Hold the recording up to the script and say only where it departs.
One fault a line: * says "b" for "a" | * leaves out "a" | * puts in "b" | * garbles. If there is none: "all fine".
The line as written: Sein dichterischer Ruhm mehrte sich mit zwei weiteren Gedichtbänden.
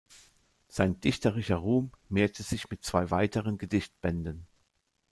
all fine